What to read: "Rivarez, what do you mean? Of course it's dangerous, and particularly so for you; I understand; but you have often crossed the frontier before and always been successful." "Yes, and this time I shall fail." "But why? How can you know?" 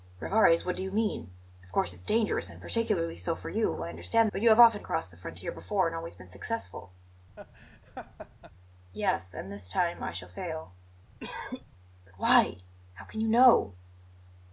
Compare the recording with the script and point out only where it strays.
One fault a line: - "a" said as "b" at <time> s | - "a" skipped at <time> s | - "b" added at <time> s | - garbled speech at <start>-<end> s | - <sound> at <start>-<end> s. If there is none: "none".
- laugh at 7.4-8.5 s
- cough at 11.2-11.6 s